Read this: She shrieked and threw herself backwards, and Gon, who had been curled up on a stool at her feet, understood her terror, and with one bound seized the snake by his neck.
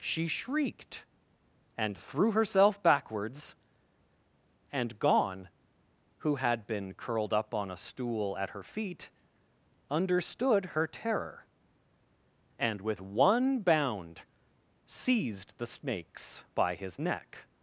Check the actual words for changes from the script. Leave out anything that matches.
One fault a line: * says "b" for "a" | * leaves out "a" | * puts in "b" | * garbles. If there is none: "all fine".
* says "snakes" for "snake"